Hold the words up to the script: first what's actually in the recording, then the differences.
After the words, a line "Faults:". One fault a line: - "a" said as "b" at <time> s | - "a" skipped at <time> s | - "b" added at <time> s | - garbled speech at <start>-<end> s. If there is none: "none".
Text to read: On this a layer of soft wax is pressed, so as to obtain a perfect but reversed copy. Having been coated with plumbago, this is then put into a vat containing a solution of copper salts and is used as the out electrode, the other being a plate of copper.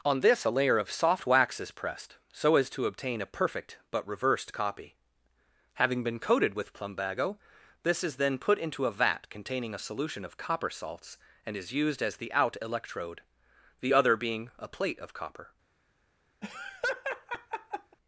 On this a layer of soft wax is pressed, so as to obtain a perfect but reversed copy. Having been coated with plumbago, this is then put into a vat containing a solution of copper salts and is used as the out electrode, the other being a plate of copper.
Faults:
none